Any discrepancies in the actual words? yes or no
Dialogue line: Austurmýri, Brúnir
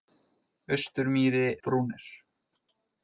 no